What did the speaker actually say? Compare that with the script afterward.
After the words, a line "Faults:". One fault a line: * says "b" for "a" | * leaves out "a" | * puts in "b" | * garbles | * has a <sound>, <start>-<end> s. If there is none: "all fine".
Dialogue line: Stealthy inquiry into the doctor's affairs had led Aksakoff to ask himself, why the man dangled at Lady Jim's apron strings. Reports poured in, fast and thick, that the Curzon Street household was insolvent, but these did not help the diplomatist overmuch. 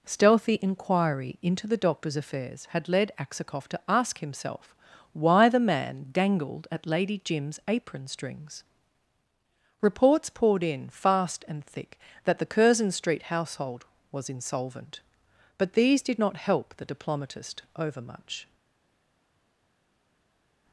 Stealthy inquiry into the doctor's affairs had led Aksakoff to ask himself, why the man dangled at Lady Jim's apron strings. Reports poured in, fast and thick, that the Curzon Street household was insolvent, but these did not help the diplomatist overmuch.
Faults:
all fine